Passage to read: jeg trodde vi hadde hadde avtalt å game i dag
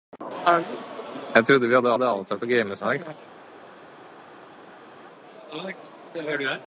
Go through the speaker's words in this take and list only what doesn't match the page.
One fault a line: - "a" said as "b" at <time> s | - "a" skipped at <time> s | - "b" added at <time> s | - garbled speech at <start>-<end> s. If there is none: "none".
none